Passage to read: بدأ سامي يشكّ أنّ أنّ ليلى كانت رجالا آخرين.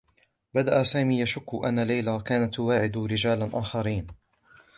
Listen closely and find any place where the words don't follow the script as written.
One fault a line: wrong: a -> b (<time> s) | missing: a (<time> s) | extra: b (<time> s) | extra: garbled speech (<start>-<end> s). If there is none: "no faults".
missing: أنّ (1.8 s)
extra: تواعد (2.5 s)